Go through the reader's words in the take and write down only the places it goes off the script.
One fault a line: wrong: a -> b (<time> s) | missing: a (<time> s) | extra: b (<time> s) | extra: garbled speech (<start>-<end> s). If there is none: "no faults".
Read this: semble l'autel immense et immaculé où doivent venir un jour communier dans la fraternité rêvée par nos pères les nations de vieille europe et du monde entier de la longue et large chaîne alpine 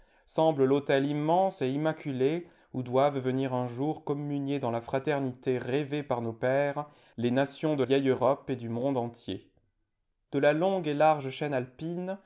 no faults